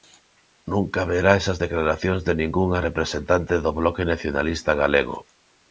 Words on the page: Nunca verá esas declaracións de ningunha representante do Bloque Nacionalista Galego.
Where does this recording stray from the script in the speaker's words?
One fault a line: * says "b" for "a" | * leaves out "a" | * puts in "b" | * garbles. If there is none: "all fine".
all fine